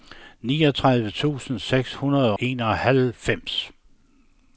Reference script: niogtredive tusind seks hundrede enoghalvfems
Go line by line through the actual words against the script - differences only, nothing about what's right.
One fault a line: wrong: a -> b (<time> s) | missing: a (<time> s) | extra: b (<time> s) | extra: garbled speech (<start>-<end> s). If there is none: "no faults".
no faults